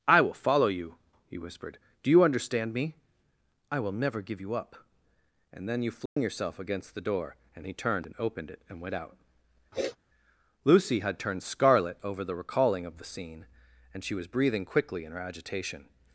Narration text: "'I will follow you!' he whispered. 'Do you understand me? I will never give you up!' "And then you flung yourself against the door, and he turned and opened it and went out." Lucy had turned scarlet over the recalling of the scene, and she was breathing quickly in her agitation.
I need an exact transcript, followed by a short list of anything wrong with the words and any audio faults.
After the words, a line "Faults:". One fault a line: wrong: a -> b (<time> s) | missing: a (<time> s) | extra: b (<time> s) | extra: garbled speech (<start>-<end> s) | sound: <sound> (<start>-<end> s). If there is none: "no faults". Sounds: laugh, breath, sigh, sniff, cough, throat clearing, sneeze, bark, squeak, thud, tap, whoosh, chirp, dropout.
"'I will follow you!' he whispered. 'Do you understand me? I will never give you up!' "And then you flung yourself against the door, and he turned and opened it and went out." Lucy had turned scarlet over the recalling of the scene, and she was breathing quickly in her agitation.
Faults:
sound: dropout (6.1-6.2 s)
sound: sniff (9.7-10.0 s)